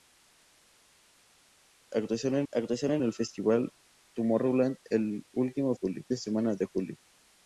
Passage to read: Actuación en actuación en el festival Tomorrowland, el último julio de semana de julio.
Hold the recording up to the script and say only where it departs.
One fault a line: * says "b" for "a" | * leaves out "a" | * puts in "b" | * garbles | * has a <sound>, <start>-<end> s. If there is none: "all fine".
all fine